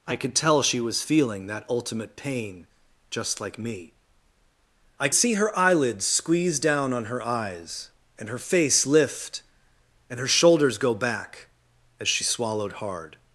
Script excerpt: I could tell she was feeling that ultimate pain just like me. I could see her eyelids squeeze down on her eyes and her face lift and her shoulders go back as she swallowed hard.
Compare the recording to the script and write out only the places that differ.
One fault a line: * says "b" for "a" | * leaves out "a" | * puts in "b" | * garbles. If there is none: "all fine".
* leaves out "could"